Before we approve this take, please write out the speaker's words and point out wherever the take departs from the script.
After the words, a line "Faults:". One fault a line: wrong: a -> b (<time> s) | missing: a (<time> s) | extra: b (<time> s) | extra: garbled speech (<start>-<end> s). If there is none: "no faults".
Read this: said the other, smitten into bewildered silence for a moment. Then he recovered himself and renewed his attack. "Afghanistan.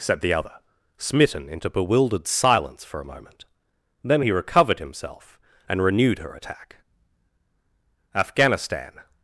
said the other, smitten into bewildered silence for a moment. Then he recovered himself and renewed her attack. "Afghanistan.
Faults:
wrong: his -> her (6.2 s)